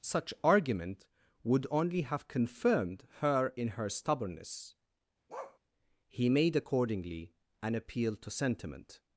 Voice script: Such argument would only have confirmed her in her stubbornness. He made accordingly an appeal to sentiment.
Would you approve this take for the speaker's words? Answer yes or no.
yes